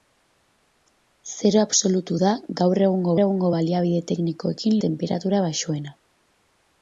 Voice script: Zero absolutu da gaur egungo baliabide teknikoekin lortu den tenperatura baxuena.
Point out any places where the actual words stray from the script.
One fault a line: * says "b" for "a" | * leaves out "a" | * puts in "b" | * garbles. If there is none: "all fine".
* puts in "egungo"
* leaves out "lortu den"